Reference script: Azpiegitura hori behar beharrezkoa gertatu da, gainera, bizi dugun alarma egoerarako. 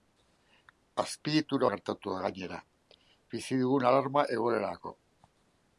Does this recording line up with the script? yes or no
no